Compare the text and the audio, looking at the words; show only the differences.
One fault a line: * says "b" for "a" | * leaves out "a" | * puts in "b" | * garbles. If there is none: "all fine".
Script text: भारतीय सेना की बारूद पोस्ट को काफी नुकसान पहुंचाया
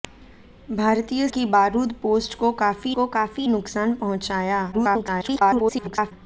* leaves out "सेना"
* puts in "को काफी"
* garbles